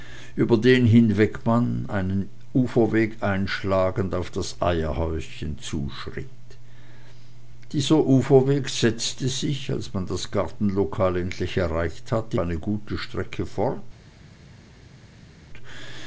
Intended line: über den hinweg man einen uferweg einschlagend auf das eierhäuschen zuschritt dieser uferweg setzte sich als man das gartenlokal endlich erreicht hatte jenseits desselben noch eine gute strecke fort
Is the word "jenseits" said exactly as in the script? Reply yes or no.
no